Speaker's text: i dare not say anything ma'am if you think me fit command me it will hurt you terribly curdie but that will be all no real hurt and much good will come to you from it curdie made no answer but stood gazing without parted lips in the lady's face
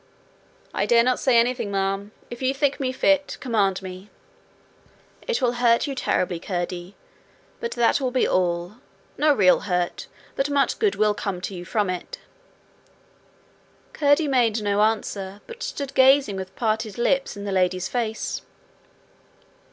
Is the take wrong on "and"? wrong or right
wrong